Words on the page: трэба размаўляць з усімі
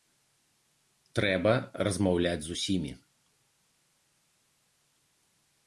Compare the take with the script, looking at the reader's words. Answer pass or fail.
pass